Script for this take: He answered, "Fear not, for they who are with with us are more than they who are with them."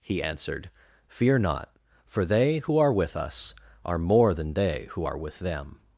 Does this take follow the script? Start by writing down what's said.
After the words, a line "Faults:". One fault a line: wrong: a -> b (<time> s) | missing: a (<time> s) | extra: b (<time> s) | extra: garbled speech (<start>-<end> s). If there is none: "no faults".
He answered, "Fear not, for they who are with us are more than they who are with them."
Faults:
missing: with (3.1 s)